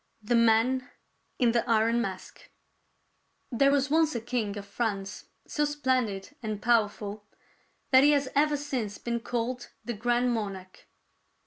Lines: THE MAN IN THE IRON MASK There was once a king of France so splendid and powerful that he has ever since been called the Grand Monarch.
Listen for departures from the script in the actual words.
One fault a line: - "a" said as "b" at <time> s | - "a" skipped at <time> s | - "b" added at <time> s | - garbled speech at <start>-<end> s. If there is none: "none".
none